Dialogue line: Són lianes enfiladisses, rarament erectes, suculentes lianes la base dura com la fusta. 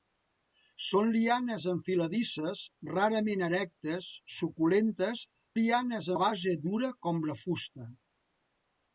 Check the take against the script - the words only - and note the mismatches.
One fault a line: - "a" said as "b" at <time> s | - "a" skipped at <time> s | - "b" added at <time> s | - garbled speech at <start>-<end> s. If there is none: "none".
none